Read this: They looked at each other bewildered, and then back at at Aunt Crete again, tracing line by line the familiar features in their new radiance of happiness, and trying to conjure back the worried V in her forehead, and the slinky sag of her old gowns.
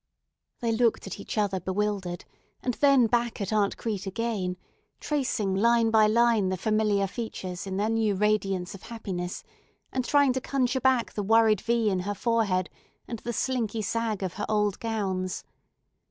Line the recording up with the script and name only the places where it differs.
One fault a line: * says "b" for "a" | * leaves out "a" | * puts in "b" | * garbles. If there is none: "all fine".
* leaves out "at"